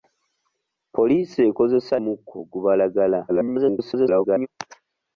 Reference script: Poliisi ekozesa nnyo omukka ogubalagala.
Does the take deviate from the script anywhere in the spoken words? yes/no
yes